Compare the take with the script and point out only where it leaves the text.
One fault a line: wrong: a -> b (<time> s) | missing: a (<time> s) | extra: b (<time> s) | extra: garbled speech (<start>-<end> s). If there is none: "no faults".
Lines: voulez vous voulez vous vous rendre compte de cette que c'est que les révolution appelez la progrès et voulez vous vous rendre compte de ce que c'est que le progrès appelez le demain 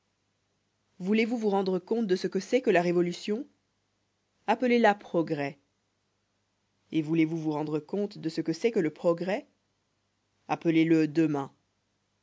missing: voulez (1.4 s)
missing: vous (1.5 s)
wrong: cette -> ce (2.1 s)
wrong: les -> la (2.7 s)